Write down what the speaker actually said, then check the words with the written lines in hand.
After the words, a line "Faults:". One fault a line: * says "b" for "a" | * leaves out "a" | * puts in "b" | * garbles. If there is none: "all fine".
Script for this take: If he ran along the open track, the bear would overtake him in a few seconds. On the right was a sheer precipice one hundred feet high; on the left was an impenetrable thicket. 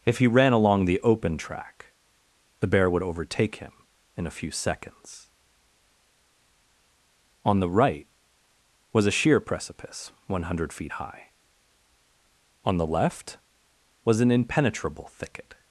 If he ran along the open track, the bear would overtake him in a few seconds. On the right was a sheer precipice one hundred feet high; on the left was an impenetrable thicket.
Faults:
all fine